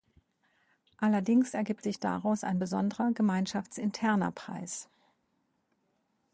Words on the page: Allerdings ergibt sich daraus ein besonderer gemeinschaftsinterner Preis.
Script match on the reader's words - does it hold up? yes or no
yes